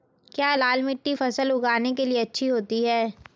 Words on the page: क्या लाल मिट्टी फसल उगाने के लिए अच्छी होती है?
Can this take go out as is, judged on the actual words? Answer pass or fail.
pass